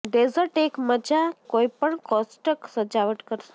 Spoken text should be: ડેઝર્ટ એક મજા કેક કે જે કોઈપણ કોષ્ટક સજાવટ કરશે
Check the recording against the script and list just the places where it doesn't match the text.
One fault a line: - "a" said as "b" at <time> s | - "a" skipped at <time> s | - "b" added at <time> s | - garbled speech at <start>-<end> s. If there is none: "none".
- "કેક કે જે" skipped at 1.2 s